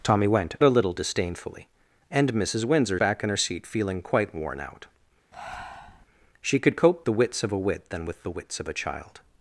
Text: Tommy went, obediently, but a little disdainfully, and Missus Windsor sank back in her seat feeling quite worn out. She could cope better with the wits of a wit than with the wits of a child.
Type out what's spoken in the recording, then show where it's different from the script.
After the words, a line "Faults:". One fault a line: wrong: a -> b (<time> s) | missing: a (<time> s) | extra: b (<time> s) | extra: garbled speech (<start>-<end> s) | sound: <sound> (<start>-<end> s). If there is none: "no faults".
Tommy went, a little disdainfully, and Missus Windsor back in her seat feeling quite worn out. She could cope the wits of a wit than with the wits of a child.
Faults:
missing: obediently but (0.6 s)
missing: sank (3.0 s)
sound: breath (5.3-6.1 s)
missing: better with (7.1 s)